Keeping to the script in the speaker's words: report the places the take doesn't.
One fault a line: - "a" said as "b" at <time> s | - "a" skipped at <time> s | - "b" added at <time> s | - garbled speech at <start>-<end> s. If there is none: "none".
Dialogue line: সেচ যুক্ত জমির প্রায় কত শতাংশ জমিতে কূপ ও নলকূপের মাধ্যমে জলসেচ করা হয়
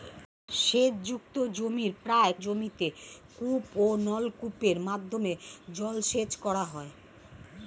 - "কত শতাংশ" skipped at 2.3 s